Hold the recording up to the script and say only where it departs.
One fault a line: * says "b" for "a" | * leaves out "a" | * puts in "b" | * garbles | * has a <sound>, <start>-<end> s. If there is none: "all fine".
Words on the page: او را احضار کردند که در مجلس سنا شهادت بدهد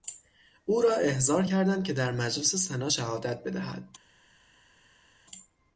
all fine